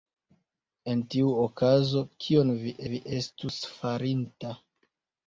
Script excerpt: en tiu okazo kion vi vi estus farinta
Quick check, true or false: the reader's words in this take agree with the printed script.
true